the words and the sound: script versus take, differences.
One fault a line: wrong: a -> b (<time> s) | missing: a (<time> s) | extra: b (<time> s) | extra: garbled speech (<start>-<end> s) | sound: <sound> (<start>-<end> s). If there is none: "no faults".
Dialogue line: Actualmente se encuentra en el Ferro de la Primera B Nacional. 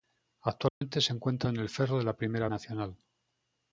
sound: dropout (0.7-0.8 s)
missing: B (2.5 s)